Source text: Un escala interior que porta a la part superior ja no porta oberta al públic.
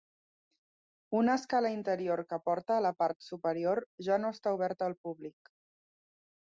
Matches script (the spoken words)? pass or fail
fail